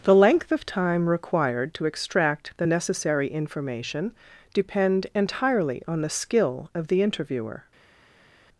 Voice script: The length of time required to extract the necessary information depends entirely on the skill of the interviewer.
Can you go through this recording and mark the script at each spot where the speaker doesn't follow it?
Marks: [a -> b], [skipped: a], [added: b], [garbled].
The length of time required to extract the necessary information [depends -> depend] entirely on the skill of the interviewer.